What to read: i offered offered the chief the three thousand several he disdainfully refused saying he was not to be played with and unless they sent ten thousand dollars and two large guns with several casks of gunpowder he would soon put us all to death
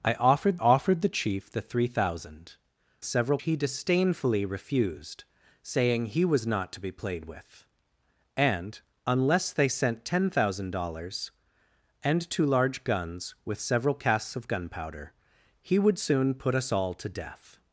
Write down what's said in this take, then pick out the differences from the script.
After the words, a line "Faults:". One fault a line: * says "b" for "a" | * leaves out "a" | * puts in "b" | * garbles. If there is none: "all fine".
i offered offered the chief the three thousand several he disdainfully refused saying he was not to be played with and unless they sent ten thousand dollars and two large guns with several casks of gunpowder he would soon put us all to death
Faults:
all fine